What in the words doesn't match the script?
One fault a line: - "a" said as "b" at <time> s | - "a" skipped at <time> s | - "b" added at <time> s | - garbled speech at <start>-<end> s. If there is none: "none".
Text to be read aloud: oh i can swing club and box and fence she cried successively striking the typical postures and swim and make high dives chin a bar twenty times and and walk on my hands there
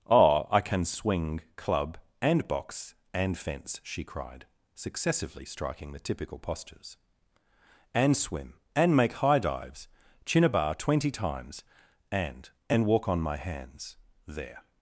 none